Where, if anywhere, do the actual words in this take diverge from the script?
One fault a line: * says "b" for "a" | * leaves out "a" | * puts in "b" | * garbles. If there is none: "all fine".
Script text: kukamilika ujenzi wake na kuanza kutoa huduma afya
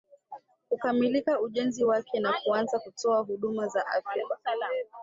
* puts in "za"